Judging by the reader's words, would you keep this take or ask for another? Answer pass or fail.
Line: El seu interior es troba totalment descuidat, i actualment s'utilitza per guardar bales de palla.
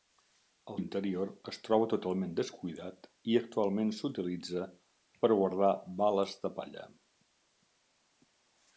fail